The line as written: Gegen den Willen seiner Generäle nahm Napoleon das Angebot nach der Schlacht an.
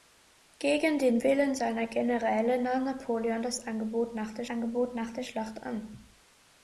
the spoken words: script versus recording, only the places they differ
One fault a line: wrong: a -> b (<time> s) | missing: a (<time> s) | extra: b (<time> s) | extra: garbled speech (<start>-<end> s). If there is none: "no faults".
extra: Angebot nach der (4.5 s)